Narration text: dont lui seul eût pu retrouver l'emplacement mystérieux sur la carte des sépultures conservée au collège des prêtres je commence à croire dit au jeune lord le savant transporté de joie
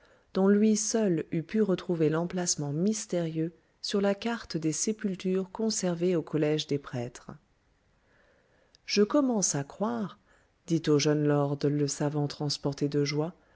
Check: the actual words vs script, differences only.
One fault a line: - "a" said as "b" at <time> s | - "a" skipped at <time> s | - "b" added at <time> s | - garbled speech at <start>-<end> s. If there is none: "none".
none